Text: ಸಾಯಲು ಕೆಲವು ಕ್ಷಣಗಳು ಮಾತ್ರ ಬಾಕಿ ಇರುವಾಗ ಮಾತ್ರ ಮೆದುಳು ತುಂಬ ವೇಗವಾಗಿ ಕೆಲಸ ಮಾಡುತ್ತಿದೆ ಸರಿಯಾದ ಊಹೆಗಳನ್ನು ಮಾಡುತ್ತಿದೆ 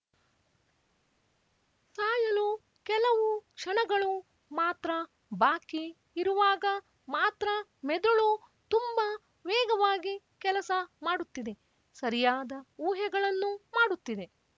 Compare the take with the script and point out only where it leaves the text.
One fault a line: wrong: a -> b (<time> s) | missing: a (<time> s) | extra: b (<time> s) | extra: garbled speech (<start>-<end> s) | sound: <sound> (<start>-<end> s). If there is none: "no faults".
no faults